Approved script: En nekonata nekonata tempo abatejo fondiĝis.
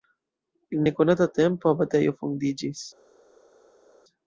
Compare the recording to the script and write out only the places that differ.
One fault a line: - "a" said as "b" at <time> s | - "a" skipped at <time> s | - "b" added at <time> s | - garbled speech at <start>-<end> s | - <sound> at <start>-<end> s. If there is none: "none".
- "nekonata" skipped at 1.3 s